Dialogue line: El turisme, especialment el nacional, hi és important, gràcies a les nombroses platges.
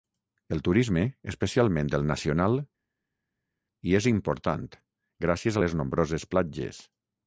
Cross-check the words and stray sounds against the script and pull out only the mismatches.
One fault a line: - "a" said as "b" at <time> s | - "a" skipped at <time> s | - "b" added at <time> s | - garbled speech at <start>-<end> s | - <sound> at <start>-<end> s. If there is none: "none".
none